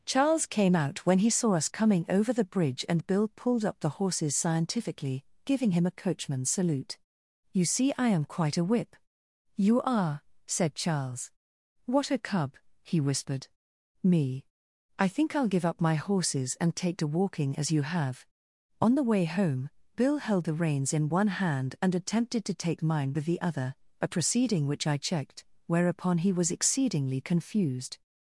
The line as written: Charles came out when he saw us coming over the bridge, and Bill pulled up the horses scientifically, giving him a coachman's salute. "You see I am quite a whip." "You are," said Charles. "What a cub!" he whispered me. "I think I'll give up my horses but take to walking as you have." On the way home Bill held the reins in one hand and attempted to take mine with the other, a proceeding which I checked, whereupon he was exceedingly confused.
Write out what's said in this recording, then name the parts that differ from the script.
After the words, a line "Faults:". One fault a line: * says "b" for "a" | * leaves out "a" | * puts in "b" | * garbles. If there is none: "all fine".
Charles came out when he saw us coming over the bridge, and Bill pulled up the horses scientifically, giving him a coachman's salute. "You see I am quite a whip." "You are," said Charles. "What a cub!" he whispered me. "I think I'll give up my horses and take to walking as you have." On the way home Bill held the reins in one hand and attempted to take mine with the other, a proceeding which I checked, whereupon he was exceedingly confused.
Faults:
* says "and" for "but"